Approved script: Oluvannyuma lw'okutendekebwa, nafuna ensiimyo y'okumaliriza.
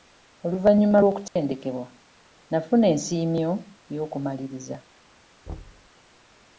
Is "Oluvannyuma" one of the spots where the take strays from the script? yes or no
no